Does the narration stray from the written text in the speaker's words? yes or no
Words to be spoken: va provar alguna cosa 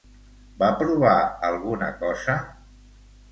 no